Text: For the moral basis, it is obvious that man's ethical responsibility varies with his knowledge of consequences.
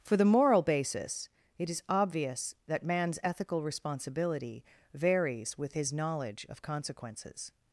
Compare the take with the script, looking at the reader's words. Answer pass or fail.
pass